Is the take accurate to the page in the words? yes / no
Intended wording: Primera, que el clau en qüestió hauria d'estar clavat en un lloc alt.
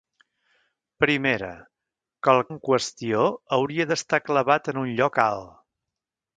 no